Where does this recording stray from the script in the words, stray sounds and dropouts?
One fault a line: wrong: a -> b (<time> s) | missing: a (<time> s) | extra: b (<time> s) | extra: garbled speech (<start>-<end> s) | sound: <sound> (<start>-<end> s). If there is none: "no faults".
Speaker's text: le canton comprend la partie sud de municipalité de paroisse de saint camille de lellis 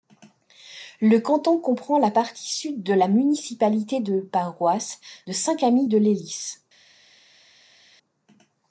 extra: la (2.9 s)